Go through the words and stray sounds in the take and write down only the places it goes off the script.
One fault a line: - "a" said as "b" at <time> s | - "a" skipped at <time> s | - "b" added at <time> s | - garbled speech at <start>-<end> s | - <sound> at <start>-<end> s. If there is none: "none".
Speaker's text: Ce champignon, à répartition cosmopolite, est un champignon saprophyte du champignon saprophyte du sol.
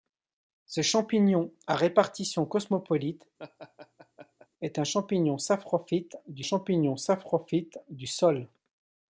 - laugh at 3.4-4.5 s